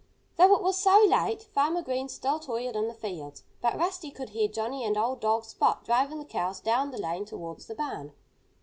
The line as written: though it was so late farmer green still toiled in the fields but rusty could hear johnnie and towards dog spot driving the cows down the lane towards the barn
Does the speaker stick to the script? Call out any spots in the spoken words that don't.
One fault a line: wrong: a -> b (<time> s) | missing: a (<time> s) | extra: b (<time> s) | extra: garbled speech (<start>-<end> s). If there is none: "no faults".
wrong: towards -> old (5.0 s)